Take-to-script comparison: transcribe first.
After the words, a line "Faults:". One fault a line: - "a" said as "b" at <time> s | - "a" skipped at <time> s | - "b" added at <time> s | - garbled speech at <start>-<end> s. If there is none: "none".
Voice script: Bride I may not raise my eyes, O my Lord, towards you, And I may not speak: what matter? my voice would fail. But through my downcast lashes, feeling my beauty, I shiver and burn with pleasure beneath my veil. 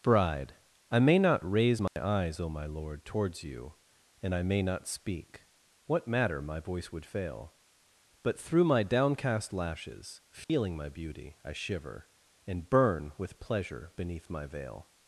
Bride I may not raise my eyes, O my Lord, towards you, And I may not speak: what matter? my voice would fail. But through my downcast lashes, feeling my beauty, I shiver and burn with pleasure beneath my veil.
Faults:
none